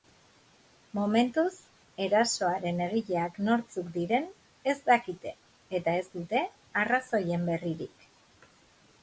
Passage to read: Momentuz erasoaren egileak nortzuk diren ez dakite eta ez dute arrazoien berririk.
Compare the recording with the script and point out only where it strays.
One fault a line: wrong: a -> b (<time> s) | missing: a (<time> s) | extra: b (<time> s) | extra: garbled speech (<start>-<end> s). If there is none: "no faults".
no faults